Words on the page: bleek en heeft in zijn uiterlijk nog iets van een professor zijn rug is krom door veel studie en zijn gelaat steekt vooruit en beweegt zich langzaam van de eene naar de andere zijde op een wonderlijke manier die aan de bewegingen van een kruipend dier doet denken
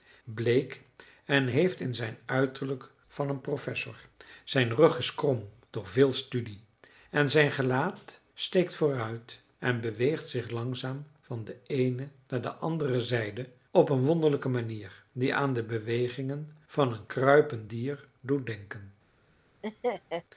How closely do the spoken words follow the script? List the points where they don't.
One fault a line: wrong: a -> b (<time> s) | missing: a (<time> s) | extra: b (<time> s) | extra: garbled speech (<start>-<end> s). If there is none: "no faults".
missing: nog iets (2.9 s)